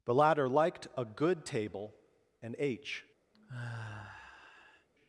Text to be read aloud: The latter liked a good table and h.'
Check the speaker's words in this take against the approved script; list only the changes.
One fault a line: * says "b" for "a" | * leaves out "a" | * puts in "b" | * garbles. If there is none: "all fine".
all fine